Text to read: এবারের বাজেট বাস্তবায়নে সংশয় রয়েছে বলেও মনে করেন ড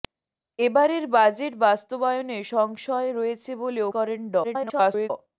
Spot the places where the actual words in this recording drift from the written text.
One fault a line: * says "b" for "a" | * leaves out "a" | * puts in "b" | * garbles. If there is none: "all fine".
* leaves out "মনে"
* garbles